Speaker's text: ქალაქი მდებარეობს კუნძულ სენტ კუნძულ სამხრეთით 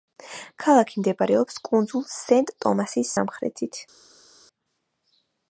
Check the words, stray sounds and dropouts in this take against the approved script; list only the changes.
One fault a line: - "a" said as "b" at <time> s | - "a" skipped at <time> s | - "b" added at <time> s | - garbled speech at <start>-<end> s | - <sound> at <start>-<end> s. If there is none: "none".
- "კუნძულ" said as "ტომასის" at 2.7 s